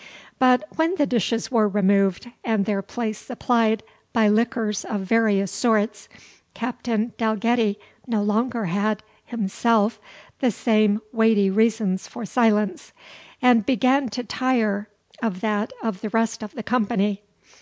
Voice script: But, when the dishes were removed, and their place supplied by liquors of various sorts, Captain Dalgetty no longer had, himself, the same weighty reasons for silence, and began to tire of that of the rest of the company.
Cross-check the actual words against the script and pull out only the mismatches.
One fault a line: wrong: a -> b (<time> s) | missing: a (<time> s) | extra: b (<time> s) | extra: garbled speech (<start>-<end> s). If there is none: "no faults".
no faults